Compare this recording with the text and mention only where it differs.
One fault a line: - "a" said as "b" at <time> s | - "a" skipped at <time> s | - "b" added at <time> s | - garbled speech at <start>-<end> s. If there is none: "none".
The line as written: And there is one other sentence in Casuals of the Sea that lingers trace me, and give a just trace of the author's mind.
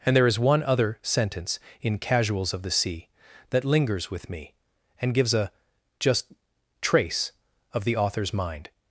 - "trace" said as "with" at 4.1 s
- "give" said as "gives" at 5.1 s